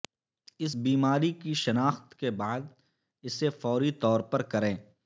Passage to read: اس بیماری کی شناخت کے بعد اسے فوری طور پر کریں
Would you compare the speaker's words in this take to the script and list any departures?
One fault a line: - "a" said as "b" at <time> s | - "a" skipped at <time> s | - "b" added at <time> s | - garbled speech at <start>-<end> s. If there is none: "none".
none